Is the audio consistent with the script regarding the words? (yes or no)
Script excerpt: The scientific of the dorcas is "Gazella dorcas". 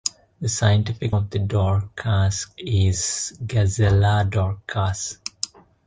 yes